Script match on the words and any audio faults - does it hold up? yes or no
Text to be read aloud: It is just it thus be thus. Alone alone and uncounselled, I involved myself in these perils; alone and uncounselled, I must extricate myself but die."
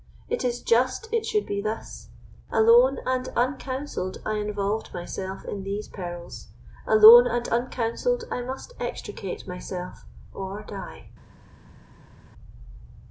no